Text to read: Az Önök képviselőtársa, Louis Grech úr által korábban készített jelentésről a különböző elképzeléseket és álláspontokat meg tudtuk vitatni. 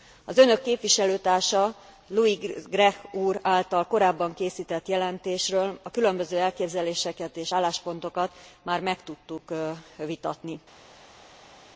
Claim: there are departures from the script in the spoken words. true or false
true